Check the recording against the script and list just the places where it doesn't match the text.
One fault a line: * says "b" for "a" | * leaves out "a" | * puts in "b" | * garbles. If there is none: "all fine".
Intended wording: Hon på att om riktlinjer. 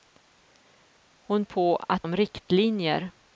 all fine